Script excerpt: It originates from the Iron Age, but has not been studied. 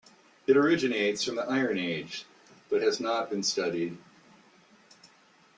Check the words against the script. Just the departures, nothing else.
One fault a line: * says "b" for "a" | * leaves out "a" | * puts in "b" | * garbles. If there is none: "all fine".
all fine